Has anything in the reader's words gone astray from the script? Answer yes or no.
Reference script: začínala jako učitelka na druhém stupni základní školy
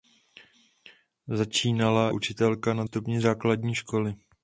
yes